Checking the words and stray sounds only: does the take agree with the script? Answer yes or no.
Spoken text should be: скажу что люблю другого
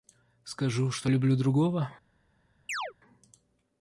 no